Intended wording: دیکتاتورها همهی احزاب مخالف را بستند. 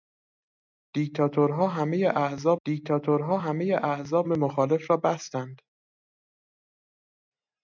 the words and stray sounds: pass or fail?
fail